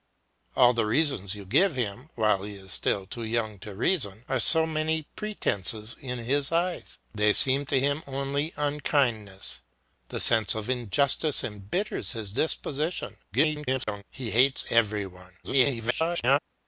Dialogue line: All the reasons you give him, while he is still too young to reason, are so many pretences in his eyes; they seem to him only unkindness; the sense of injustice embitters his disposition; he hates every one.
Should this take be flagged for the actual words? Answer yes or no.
yes